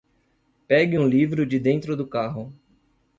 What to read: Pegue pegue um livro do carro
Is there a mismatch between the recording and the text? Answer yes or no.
yes